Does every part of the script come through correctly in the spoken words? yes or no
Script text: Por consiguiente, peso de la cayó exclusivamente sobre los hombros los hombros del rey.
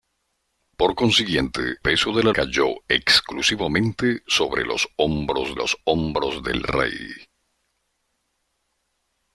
yes